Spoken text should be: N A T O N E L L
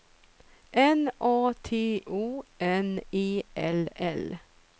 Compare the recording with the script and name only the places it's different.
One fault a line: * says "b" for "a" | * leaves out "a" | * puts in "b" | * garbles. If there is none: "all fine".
all fine